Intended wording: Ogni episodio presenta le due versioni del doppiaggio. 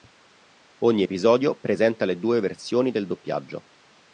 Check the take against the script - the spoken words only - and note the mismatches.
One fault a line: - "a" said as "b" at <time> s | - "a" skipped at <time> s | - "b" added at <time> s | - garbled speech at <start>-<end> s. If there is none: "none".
none